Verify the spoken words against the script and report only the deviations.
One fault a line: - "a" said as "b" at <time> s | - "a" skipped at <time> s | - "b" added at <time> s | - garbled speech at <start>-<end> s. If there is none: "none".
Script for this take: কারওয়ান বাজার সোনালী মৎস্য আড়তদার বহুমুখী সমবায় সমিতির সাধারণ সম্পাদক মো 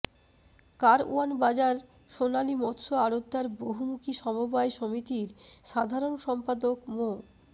none